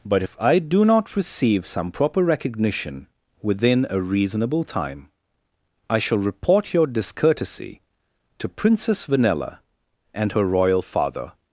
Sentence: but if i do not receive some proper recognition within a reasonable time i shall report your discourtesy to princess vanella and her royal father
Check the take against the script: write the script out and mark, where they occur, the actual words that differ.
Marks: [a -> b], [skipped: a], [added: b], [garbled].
but if i do not receive some proper recognition within a reasonable time i shall report your discourtesy to princess vanella and her royal father